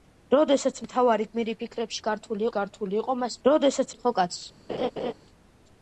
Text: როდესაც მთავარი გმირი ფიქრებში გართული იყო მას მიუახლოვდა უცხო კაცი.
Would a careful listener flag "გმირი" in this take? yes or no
no